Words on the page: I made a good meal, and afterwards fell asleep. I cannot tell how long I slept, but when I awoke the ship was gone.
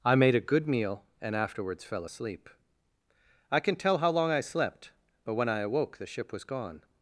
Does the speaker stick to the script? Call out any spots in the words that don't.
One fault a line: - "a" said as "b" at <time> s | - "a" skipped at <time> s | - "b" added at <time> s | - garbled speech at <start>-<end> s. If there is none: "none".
- "cannot" said as "can" at 3.6 s